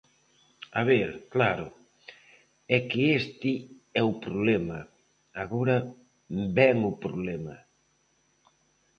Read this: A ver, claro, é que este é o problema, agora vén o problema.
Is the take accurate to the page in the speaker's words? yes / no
yes